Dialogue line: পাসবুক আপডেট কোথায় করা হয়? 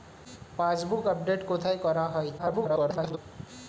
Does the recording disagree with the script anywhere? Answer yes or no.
yes